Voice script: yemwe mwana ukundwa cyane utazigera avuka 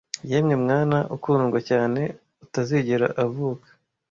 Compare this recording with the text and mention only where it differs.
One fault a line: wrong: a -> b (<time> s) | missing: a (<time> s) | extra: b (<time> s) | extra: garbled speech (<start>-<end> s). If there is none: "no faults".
no faults